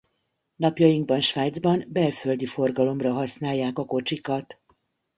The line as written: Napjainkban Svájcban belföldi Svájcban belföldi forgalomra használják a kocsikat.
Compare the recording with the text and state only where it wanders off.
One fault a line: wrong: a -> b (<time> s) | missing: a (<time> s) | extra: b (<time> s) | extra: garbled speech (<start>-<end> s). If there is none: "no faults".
missing: Svájcban belföldi (2.5 s)